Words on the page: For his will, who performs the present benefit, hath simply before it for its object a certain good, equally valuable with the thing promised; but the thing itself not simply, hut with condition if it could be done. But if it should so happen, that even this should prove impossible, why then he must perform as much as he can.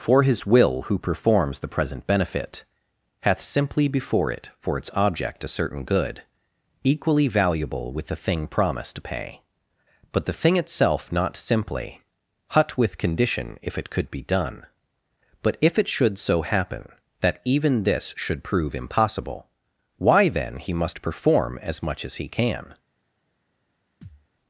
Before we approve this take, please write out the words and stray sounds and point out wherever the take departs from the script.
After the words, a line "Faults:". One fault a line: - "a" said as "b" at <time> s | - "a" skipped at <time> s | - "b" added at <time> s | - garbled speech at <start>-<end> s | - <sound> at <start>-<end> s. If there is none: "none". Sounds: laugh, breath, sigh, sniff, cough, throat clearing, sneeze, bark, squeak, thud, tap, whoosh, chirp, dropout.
For his will, who performs the present benefit, hath simply before it for its object a certain good, equally valuable with the thing promised; to pay but the thing itself not simply, hut with condition if it could be done. But if it should so happen, that even this should prove impossible, why then he must perform as much as he can.
Faults:
- "to pay" added at 8.9 s
- thud at 24.0-24.3 s